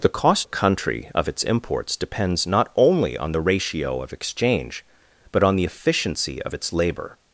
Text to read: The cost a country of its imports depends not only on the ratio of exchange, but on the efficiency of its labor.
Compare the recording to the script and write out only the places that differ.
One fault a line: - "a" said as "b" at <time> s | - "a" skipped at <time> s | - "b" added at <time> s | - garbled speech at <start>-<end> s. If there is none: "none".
none